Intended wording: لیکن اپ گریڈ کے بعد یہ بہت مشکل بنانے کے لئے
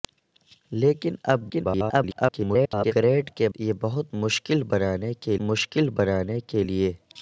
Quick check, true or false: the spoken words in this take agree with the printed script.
false